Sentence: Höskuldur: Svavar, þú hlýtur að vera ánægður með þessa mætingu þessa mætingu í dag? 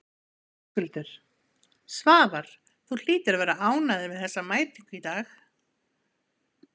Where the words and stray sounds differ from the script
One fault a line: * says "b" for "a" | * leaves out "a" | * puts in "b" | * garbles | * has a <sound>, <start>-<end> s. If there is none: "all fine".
* leaves out "þessa mætingu"